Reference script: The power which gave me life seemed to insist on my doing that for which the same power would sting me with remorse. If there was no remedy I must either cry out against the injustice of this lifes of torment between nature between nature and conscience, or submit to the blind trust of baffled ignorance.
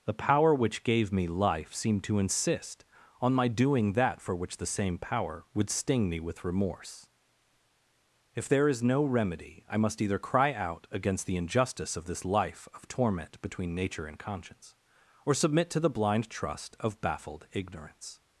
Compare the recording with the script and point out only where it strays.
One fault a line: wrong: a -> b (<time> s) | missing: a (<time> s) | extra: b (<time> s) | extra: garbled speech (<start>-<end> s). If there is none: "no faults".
wrong: was -> is (8.7 s)
wrong: lifes -> life (12.2 s)
missing: between nature (14.1 s)